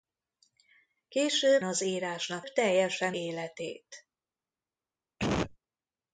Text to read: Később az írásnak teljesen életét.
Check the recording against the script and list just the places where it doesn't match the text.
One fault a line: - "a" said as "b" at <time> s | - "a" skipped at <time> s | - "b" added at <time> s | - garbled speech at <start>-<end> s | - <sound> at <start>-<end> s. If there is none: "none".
- cough at 5.2-5.6 s